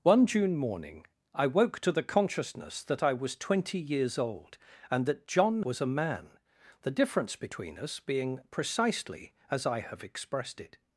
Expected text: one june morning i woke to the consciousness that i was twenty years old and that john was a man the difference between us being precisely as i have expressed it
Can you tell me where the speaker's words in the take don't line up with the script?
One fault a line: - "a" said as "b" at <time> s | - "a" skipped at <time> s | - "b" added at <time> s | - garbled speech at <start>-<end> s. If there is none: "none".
none